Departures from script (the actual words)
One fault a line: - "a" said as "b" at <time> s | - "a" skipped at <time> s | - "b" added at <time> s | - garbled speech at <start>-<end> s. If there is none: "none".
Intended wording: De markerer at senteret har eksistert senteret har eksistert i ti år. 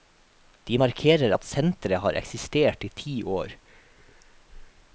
- "senteret har eksistert" skipped at 2.8 s